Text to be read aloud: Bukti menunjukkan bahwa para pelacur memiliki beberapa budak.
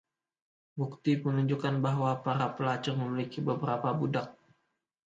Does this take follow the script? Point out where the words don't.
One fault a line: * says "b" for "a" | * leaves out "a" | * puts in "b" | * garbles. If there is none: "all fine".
all fine